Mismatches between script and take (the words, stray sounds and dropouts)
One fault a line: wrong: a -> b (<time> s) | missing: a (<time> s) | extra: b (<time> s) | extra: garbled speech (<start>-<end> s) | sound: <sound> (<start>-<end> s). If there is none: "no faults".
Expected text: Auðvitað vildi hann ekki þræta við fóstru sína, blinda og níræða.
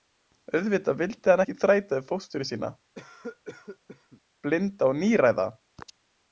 sound: cough (2.9-4.2 s)